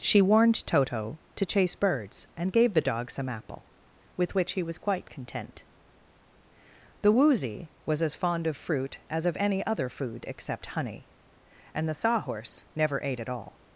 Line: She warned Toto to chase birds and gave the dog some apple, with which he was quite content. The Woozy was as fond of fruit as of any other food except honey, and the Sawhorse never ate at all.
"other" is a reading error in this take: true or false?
false